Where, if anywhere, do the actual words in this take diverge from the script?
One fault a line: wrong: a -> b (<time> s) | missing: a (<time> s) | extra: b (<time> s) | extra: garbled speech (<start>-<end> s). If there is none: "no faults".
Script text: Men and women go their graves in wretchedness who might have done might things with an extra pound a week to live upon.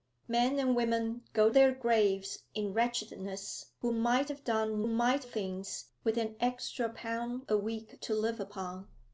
no faults